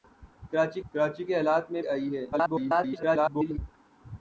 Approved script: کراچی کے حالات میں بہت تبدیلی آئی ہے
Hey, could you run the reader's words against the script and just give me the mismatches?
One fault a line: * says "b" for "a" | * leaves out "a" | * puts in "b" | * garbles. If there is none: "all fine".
* puts in "کراچی"
* leaves out "بہت تبدیلی"
* garbles